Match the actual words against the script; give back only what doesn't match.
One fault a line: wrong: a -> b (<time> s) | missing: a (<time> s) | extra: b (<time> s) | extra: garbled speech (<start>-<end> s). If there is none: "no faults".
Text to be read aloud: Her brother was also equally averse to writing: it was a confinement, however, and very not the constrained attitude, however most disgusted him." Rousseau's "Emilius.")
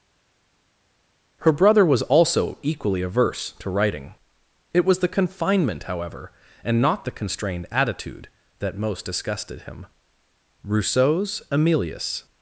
wrong: a -> the (5.0 s)
missing: very (6.8 s)
wrong: however -> that (8.6 s)